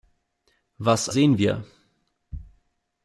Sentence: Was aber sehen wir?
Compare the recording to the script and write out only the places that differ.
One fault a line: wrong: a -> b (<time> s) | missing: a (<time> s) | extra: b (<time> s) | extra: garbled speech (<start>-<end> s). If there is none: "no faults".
missing: aber (1.1 s)